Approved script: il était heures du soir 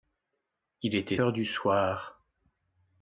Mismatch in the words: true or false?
false